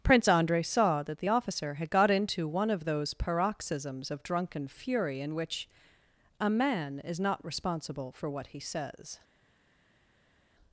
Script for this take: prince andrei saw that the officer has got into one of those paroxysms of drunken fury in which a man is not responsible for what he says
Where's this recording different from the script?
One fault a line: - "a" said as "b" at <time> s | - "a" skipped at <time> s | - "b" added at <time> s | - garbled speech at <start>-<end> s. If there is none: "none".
- "has" said as "had" at 1.7 s